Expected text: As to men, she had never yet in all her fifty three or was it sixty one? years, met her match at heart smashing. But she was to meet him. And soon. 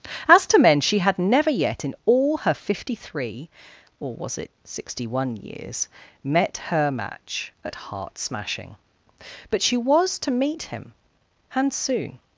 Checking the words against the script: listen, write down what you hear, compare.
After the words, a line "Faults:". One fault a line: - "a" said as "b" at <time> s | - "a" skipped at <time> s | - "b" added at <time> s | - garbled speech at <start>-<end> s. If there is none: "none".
As to men, she had never yet in all her fifty three or was it sixty one? years, met her match at heart smashing. But she was to meet him. And soon.
Faults:
none